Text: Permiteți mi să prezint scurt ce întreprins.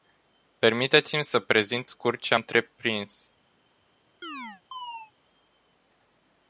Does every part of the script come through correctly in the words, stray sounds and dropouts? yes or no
no